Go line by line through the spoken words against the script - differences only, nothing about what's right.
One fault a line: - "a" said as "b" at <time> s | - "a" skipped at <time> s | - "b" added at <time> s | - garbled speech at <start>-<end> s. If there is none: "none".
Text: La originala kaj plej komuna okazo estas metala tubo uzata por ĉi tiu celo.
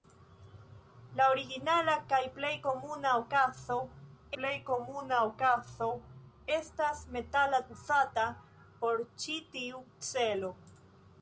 - "plej komuna okazo" added at 4.4 s
- "tubo" skipped at 7.6 s